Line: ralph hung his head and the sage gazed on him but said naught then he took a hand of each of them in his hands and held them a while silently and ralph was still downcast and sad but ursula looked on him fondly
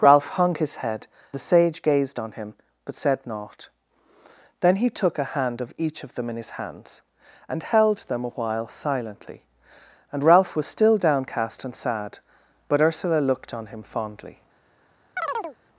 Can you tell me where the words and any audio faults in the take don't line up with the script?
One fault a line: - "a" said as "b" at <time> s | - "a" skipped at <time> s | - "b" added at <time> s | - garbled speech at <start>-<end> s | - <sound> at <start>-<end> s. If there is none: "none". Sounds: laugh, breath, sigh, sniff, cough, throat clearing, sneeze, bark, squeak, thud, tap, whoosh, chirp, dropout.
- "and" skipped at 1.1 s
- chirp at 15.2-15.6 s